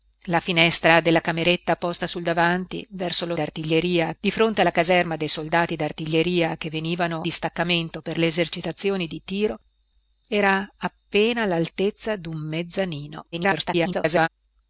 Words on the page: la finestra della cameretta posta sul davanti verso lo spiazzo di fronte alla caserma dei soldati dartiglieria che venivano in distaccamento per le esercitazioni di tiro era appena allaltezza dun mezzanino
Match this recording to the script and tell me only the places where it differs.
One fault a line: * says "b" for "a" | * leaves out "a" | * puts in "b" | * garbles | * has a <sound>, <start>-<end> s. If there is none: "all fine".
* says "dartiglieria" for "spiazzo"
* leaves out "in"
* garbles